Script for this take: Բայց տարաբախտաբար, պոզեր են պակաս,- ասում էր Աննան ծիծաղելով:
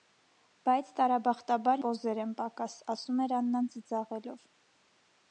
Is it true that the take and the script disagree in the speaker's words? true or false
false